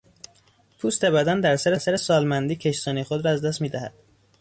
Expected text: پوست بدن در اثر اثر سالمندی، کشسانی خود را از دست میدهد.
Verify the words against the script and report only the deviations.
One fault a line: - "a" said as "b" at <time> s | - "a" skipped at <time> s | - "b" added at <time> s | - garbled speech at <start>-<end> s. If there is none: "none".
none